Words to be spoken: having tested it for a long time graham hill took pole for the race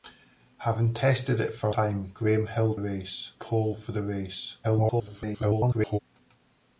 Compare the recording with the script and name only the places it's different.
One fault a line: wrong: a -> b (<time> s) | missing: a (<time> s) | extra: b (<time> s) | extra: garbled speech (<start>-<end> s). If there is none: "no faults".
missing: long (1.8 s)
wrong: took -> race (2.8 s)
extra: garbled speech (4.6-6.0 s)